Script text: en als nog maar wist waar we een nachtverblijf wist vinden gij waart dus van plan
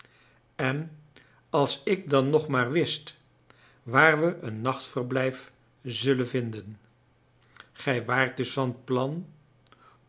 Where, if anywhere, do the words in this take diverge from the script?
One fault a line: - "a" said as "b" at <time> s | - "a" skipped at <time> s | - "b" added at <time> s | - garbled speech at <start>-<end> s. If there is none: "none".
- "ik dan" added at 1.8 s
- "wist" said as "zullen" at 5.8 s